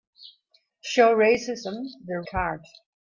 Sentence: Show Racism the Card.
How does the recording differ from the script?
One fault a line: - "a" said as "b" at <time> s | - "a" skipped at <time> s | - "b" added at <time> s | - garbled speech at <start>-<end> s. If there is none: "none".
none